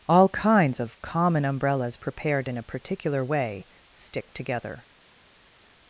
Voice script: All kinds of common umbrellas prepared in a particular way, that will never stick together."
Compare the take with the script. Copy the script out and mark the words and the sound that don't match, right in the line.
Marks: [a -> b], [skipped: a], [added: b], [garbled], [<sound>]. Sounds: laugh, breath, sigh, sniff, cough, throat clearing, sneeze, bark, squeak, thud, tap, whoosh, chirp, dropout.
All kinds of common umbrellas prepared in a particular way, [skipped: that will never] stick together."